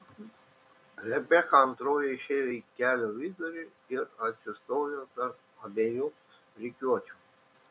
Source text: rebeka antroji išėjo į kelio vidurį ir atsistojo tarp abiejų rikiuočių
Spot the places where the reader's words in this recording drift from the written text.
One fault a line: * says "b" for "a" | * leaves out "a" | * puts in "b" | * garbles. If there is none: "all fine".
all fine